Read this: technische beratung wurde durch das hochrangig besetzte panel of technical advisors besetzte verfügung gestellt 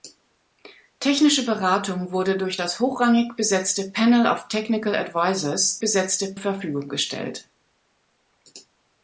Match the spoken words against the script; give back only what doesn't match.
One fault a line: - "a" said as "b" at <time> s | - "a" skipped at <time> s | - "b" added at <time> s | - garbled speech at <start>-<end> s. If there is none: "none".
none